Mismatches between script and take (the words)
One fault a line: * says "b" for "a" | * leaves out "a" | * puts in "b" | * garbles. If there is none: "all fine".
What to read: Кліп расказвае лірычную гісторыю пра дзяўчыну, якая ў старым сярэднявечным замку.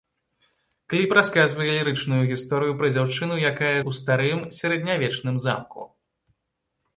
all fine